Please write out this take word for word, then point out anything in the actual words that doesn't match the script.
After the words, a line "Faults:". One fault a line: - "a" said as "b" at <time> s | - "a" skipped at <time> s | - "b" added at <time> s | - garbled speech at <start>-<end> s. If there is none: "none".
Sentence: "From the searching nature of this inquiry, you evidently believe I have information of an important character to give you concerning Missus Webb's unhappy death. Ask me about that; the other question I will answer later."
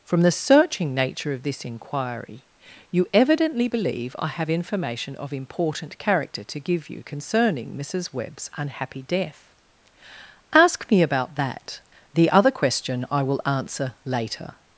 "From the searching nature of this inquiry, you evidently believe I have information of important character to give you concerning Missus Webb's unhappy death. Ask me about that; the other question I will answer later."
Faults:
- "an" skipped at 5.3 s